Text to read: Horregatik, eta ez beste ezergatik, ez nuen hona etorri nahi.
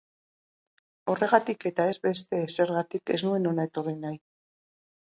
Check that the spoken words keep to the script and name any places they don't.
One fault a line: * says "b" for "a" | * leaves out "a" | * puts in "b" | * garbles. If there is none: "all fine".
all fine